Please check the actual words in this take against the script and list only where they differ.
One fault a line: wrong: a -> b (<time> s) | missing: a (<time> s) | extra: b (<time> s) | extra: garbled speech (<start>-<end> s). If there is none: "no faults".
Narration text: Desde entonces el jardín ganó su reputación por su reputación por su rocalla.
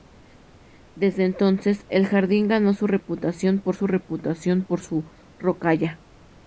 no faults